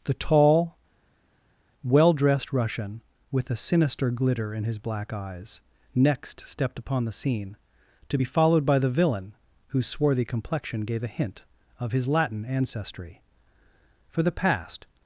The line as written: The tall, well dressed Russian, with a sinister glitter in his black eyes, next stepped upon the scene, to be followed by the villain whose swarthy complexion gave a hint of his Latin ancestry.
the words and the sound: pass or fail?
fail